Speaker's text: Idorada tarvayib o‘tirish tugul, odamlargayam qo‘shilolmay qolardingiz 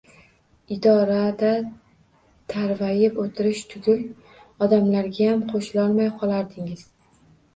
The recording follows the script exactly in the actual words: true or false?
true